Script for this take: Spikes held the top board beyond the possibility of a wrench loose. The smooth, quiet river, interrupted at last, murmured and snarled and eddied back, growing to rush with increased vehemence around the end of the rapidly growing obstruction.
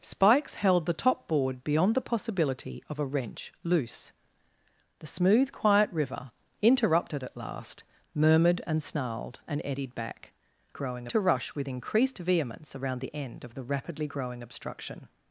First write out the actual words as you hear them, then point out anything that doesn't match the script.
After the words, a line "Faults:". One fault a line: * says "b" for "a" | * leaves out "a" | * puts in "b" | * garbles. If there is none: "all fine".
Spikes held the top board beyond the possibility of a wrench loose. The smooth, quiet river, interrupted at last, murmured and snarled and eddied back, growing to rush with increased vehemence around the end of the rapidly growing obstruction.
Faults:
all fine